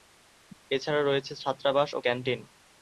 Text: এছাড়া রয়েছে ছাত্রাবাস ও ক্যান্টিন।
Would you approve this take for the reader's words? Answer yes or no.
yes